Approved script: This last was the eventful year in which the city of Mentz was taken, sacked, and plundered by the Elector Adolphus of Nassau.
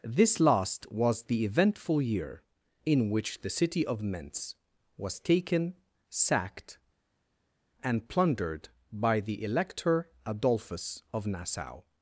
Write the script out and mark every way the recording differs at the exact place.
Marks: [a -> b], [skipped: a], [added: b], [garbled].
This last was the eventful year in which the city of Mentz was taken, sacked, and plundered by the Elector Adolphus of Nassau.